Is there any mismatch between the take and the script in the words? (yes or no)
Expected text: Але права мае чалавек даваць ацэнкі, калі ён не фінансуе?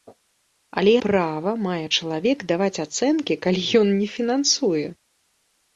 no